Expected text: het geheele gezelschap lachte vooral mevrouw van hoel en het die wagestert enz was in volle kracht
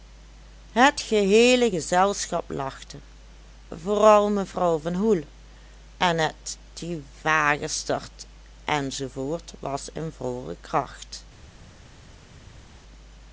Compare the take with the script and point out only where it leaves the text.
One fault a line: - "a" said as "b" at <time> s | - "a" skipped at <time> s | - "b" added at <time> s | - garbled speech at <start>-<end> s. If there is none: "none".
none